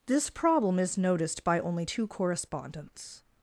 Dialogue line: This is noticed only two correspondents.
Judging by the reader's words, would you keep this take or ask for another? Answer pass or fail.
fail